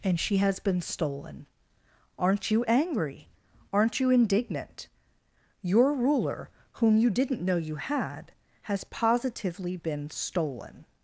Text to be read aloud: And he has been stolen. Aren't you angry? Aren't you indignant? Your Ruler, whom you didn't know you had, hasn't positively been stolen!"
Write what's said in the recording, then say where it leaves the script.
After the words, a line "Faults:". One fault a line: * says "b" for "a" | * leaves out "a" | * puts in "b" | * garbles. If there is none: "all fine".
And she has been stolen. Aren't you angry? Aren't you indignant? Your Ruler, whom you didn't know you had, has positively been stolen!"
Faults:
* says "she" for "he"
* says "has" for "hasn't"